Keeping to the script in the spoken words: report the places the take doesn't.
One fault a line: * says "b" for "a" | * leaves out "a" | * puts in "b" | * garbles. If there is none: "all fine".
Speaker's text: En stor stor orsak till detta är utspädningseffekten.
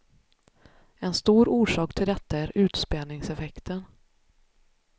* leaves out "stor"